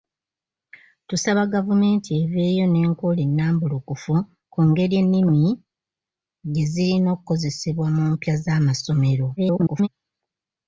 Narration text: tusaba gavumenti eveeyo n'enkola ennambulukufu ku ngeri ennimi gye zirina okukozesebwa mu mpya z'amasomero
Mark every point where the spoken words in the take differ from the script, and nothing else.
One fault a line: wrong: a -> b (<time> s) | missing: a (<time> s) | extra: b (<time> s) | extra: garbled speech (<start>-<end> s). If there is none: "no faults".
extra: garbled speech (9.4-9.9 s)